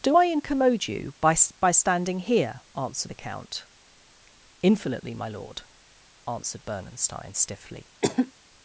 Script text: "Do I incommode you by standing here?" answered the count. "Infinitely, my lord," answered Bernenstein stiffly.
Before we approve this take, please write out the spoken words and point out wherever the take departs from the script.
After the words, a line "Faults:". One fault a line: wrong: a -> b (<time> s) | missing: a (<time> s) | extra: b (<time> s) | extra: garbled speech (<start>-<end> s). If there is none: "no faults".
"Do I incommode you by by standing here?" answered the count. "Infinitely, my lord," answered Bernenstein stiffly.
Faults:
extra: by (1.6 s)